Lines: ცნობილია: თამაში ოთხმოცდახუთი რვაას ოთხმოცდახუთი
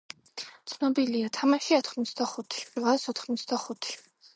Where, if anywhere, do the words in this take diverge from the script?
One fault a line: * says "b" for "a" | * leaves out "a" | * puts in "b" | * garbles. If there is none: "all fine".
all fine